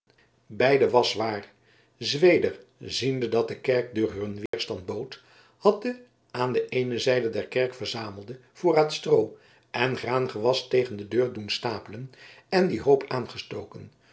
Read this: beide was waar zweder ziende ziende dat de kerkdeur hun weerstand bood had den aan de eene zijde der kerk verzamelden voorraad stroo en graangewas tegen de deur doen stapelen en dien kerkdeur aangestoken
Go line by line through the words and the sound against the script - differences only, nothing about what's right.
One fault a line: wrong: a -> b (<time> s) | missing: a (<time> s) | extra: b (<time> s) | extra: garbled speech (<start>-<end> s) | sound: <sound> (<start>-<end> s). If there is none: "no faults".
missing: ziende (3.3 s)
sound: dropout (4.5-4.5 s)
wrong: kerkdeur -> hoop (12.8 s)